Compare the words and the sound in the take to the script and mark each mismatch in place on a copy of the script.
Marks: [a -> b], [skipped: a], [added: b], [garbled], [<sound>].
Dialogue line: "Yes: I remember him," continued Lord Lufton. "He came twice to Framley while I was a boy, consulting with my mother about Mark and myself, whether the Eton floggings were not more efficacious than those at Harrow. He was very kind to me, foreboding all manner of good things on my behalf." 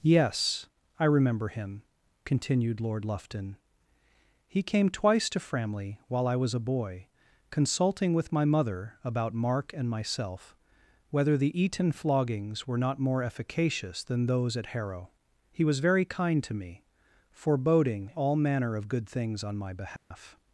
"Yes: I remember him," continued Lord Lufton. "He came twice to Framley while I was a boy, consulting with my mother about Mark and myself, whether the Eton floggings were not more efficacious than those at Harrow. He was very kind to me, foreboding all manner of good things on my behalf." [dropout]